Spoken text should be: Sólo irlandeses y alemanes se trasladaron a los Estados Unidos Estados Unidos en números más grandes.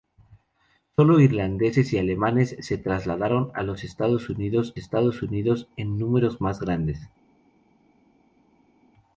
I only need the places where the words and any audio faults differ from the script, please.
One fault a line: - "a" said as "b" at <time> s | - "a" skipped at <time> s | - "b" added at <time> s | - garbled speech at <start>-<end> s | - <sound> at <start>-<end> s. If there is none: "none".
none